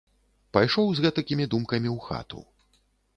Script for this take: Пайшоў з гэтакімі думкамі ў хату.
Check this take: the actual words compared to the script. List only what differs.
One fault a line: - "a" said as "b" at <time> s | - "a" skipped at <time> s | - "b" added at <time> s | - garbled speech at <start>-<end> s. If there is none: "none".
none